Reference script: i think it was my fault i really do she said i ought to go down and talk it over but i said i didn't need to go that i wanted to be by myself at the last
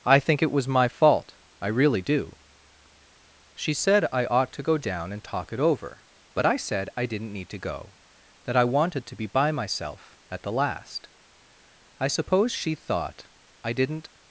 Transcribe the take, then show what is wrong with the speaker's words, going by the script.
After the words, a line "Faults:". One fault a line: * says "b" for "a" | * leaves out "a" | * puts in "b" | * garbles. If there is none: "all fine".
i think it was my fault i really do she said i ought to go down and talk it over but i said i didn't need to go that i wanted to be by myself at the last i suppose she thought i didn't
Faults:
* puts in "i suppose she thought i didn't"